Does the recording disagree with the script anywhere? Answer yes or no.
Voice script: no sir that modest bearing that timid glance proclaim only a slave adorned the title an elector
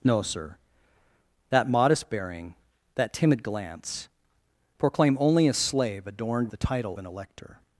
no